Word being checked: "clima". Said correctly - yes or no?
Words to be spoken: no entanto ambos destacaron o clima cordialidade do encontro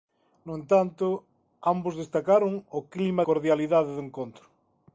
yes